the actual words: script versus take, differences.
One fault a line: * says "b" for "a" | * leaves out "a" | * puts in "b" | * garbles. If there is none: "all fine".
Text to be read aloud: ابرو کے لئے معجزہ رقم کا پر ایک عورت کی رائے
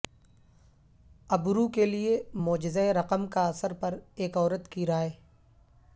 * puts in "اثر"